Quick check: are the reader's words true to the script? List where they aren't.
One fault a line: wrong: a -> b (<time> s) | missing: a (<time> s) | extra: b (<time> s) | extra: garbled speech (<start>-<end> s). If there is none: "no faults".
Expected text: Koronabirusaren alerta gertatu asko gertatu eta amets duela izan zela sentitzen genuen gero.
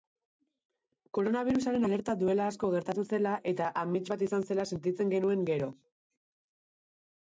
wrong: gertatu -> duela (2.2 s)
extra: zela (3.2 s)
wrong: duela -> bat (4.2 s)